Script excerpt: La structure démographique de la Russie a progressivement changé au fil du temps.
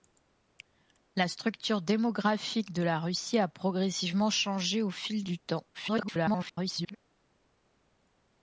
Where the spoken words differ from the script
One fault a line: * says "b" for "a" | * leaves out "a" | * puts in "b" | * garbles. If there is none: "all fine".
* garbles